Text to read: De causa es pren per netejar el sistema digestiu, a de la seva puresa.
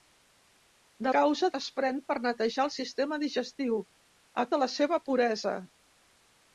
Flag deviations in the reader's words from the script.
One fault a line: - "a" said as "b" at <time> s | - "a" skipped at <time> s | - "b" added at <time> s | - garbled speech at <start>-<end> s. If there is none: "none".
none